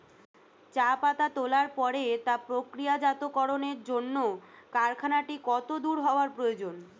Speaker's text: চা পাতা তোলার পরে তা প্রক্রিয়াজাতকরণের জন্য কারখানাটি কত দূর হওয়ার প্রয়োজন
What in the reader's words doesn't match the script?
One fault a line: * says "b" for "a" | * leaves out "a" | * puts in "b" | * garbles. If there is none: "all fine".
all fine